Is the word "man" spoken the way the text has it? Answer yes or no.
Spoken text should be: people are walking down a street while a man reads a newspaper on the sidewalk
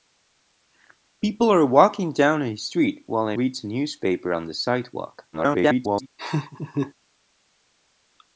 no